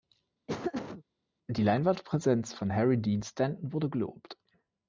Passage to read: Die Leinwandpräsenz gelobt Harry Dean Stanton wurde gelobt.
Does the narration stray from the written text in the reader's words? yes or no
yes